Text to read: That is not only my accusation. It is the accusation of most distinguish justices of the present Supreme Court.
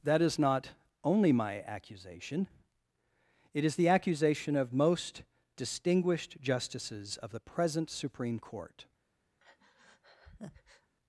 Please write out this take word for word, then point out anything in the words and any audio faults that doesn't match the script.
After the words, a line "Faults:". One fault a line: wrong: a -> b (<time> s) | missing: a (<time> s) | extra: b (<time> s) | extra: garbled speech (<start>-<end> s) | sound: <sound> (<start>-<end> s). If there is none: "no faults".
That is not only my accusation. It is the accusation of most distinguished justices of the present Supreme Court.
Faults:
wrong: distinguish -> distinguished (5.5 s)
sound: breath (9.4-10.9 s)